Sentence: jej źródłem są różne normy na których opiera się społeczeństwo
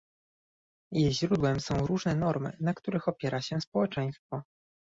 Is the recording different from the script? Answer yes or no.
no